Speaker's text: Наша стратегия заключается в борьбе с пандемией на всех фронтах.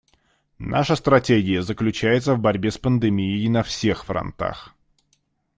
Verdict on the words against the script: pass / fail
pass